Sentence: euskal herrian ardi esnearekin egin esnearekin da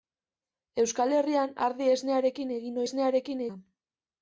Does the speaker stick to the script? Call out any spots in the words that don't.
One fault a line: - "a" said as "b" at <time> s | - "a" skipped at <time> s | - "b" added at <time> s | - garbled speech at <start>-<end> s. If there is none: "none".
none